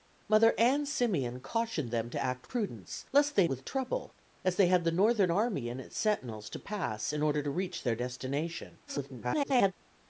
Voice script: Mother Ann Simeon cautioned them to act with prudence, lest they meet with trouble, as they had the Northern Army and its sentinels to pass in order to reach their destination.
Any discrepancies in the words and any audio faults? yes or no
yes